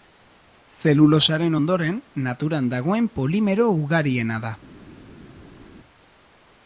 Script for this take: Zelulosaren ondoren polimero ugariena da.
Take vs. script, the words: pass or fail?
fail